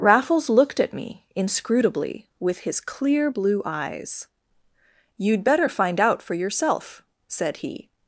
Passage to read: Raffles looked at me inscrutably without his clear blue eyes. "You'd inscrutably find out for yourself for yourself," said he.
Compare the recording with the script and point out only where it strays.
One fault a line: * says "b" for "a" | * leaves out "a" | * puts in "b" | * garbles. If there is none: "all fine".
* says "with" for "without"
* says "better" for "inscrutably"
* leaves out "for yourself"